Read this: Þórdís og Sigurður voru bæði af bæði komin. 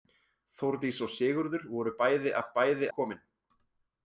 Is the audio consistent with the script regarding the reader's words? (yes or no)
yes